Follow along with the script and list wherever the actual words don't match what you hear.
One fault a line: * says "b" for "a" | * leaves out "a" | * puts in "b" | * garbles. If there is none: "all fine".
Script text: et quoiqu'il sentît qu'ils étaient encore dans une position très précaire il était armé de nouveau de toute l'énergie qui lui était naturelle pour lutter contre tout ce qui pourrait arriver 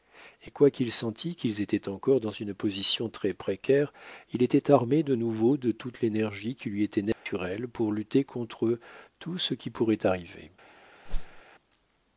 all fine